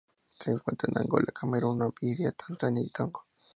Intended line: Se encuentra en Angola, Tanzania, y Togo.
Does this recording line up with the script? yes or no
no